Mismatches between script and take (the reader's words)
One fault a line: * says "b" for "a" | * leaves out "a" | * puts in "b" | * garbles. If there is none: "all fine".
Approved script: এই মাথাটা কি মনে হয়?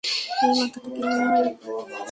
all fine